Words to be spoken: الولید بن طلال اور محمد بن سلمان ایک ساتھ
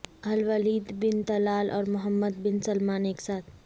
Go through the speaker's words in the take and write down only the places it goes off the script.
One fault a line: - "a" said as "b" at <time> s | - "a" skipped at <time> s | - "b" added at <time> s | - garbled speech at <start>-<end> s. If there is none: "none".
none